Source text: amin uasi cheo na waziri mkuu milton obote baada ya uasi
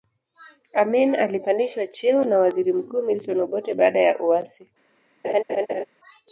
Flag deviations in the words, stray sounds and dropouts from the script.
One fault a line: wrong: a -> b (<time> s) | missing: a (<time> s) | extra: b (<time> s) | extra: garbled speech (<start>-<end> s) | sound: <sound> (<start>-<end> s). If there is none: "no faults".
wrong: uasi -> alipandishwa (1.1 s)
sound: laugh (5.2-5.8 s)